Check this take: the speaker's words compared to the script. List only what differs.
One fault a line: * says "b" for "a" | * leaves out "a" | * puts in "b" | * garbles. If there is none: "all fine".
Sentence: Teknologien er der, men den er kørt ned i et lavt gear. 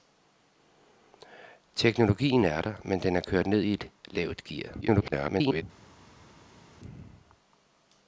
* garbles